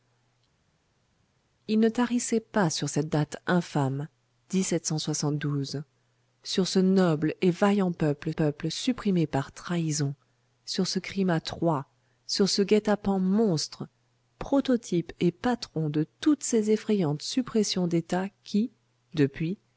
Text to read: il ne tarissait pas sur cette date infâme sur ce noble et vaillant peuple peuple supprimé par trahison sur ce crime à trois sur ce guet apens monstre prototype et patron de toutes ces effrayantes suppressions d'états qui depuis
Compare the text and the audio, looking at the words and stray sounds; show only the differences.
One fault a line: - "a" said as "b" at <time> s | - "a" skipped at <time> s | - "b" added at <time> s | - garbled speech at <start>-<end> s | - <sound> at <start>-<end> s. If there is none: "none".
none